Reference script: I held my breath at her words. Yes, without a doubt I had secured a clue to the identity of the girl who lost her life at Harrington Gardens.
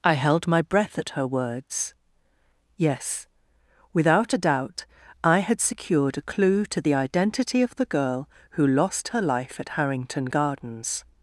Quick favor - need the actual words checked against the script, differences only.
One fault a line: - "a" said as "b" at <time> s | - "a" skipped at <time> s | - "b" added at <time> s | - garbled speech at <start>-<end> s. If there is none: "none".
none